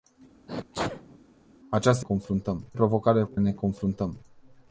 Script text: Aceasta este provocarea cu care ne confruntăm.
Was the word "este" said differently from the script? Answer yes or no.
yes